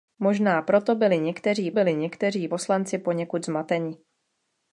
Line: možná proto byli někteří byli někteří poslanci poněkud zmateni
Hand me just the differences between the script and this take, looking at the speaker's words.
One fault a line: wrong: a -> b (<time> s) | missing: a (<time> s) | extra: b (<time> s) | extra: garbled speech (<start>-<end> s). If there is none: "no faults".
no faults